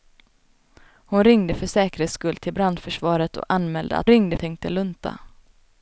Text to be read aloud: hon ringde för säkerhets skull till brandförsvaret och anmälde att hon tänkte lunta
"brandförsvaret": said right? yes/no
yes